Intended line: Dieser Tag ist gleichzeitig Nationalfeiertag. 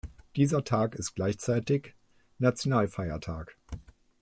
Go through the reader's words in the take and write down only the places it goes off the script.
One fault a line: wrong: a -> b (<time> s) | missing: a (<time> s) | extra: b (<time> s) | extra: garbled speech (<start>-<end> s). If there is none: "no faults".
no faults